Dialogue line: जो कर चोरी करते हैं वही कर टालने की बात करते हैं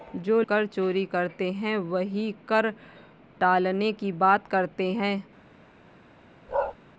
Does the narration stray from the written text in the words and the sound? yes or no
yes